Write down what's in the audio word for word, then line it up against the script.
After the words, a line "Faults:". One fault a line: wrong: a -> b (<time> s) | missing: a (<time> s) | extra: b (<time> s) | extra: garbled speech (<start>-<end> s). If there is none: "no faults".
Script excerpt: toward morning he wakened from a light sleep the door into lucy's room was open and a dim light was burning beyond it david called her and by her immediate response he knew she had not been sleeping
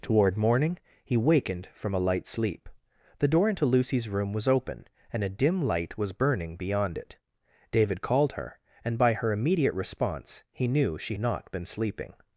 toward morning he wakened from a light sleep the door into lucy's room was open and a dim light was burning beyond it david called her and by her immediate response he knew she not been sleeping
Faults:
missing: had (11.2 s)